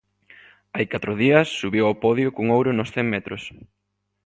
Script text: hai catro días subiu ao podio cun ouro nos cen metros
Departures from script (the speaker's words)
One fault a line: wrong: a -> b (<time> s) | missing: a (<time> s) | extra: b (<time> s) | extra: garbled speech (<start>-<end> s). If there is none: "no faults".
no faults